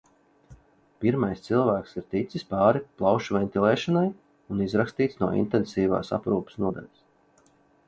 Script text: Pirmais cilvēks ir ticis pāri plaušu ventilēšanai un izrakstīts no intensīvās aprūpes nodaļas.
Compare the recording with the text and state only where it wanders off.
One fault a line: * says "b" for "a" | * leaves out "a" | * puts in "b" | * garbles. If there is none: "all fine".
all fine